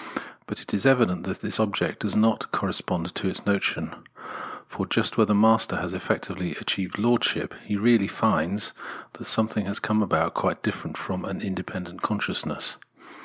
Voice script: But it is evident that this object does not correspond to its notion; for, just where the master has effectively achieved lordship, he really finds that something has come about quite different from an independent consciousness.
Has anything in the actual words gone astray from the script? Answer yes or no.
no